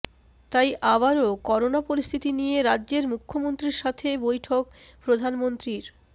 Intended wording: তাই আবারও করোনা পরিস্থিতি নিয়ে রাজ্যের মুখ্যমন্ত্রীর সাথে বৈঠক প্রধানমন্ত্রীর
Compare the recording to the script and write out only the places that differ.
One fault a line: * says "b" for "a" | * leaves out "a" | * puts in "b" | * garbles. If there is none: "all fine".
all fine